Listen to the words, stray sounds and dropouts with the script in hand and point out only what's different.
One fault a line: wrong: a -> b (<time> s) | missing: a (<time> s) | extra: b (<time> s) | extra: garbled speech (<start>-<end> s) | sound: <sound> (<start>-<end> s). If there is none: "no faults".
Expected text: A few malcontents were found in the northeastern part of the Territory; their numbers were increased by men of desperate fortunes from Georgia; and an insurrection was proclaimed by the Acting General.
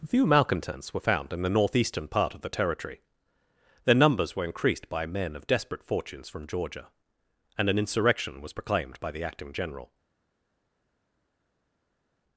missing: A (0.1 s)